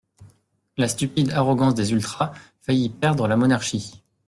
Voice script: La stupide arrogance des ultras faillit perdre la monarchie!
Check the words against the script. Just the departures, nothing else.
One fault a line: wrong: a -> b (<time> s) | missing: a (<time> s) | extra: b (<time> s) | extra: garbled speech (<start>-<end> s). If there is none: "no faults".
no faults